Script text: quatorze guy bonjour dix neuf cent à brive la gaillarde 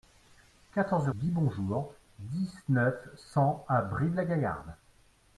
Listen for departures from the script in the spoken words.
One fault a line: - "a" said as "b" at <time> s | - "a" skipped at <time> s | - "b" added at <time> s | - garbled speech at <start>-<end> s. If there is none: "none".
none